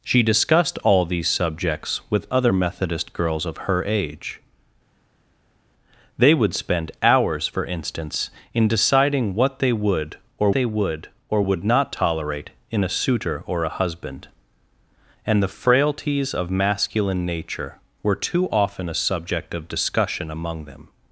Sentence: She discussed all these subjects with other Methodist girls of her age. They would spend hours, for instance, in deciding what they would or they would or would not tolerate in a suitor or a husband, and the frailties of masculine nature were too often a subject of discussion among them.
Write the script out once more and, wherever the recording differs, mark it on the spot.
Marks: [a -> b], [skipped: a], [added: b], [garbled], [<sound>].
She discussed all these subjects with other Methodist girls of her age. They would spend hours, for instance, in deciding what they would or they would or would not tolerate in a suitor or a husband, and the frailties of masculine nature were too often a subject of discussion among them.